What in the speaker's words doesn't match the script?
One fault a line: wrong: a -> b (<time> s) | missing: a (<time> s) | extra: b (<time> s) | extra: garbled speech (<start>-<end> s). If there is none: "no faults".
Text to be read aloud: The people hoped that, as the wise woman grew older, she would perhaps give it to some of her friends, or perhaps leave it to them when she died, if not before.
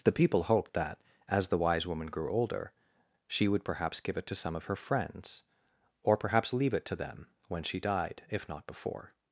no faults